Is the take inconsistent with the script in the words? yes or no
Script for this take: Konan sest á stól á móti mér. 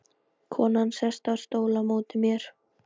no